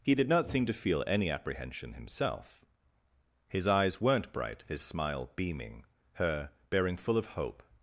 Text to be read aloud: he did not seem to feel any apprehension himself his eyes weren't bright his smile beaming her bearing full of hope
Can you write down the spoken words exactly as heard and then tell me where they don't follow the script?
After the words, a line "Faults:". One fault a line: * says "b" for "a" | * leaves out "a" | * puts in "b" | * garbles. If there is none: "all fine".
he did not seem to feel any apprehension himself his eyes weren't bright his smile beaming her bearing full of hope
Faults:
all fine